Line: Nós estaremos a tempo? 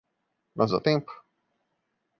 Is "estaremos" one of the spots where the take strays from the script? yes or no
yes